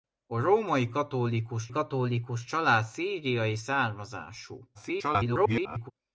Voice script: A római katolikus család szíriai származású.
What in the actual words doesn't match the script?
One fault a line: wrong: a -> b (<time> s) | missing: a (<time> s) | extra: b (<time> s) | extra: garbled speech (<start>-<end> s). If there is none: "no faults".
extra: katolikus (1.7 s)
extra: garbled speech (4.7-5.9 s)